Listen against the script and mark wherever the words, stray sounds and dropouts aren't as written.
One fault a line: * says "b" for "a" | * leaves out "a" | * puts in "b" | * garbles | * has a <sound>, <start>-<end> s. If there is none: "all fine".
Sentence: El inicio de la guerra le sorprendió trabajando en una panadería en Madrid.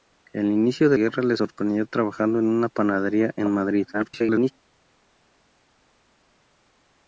* leaves out "la"
* garbles